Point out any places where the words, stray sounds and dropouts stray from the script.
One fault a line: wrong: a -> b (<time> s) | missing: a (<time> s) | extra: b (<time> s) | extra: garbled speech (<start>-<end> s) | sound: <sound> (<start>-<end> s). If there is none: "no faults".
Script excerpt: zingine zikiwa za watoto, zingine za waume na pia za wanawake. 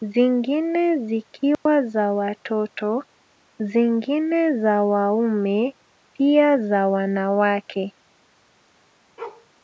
sound: dropout (1.5-1.7 s)
missing: na (5.8 s)
sound: bark (9.2-9.5 s)